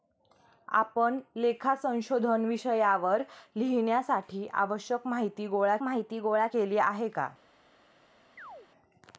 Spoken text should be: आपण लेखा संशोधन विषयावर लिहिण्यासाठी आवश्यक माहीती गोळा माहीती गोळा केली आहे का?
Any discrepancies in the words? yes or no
no